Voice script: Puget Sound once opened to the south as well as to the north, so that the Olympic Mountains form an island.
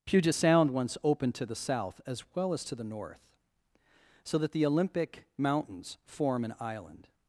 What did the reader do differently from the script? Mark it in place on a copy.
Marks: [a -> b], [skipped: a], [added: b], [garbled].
Puget Sound once opened to the south as well as to the north, so that the Olympic Mountains form an island.